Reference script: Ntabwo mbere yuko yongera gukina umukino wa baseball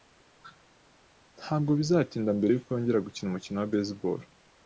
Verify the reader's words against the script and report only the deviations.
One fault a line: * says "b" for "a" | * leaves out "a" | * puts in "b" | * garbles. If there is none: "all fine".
* puts in "bizatinda"